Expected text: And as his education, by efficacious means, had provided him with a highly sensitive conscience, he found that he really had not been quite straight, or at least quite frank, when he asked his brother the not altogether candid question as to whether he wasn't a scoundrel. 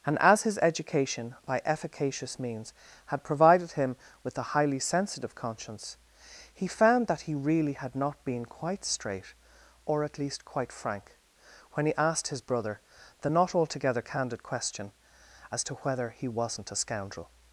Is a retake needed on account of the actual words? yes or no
no